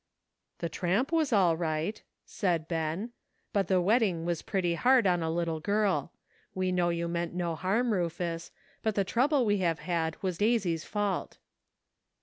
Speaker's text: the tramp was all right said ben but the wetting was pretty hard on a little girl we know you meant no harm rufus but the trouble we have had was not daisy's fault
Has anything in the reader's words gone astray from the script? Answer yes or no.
yes